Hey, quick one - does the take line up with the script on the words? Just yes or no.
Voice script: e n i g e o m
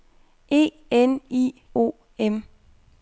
no